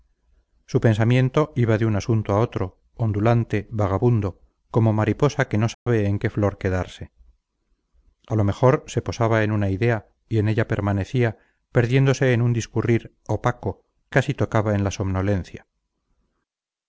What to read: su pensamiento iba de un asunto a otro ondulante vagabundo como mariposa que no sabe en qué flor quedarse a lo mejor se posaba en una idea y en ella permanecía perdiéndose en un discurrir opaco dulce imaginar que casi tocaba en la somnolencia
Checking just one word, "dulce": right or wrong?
wrong